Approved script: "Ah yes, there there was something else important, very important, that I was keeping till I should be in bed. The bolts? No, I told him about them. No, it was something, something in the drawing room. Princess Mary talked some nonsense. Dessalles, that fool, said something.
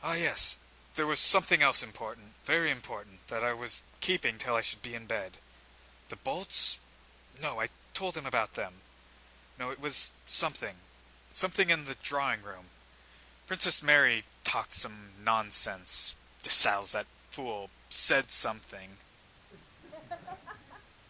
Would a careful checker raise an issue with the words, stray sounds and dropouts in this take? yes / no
yes